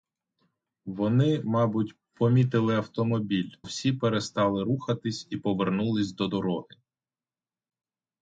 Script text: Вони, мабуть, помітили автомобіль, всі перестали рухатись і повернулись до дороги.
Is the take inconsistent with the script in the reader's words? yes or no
no